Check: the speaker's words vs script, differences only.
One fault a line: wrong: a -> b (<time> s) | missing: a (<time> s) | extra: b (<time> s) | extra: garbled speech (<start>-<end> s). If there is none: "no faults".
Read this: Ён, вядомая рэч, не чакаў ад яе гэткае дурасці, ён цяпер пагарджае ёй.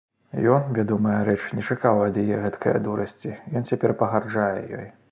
no faults